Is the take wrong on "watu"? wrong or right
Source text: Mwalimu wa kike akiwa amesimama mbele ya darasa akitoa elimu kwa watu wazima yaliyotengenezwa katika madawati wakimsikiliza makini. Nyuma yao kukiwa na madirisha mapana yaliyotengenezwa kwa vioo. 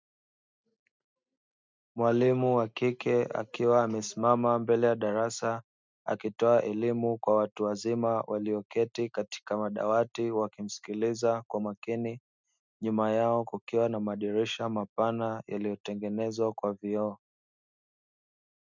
right